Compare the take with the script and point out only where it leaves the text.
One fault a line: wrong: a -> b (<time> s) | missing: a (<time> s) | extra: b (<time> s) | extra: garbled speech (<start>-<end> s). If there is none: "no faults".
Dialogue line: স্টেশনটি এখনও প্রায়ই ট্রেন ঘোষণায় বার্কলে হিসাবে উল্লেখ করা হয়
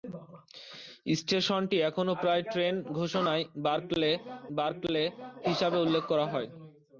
extra: বার্কলে (4.6 s)